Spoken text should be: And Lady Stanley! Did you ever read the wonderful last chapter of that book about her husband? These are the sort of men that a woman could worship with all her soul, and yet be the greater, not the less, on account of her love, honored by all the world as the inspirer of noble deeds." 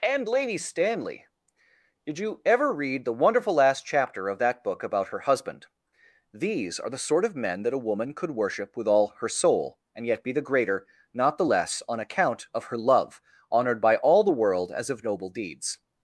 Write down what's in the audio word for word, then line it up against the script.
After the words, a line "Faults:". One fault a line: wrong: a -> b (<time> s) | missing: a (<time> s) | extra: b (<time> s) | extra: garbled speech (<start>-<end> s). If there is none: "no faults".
And Lady Stanley! Did you ever read the wonderful last chapter of that book about her husband? These are the sort of men that a woman could worship with all her soul, and yet be the greater, not the less, on account of her love, honored by all the world as of noble deeds."
Faults:
missing: the inspirer (14.9 s)